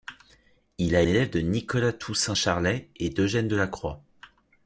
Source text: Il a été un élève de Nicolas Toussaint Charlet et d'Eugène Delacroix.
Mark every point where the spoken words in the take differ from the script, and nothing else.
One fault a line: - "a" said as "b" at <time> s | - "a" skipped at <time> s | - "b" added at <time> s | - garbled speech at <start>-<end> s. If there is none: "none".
- "été un" skipped at 1.0 s